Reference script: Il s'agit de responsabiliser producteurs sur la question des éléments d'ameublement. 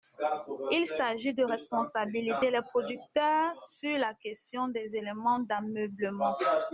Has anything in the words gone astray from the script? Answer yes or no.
yes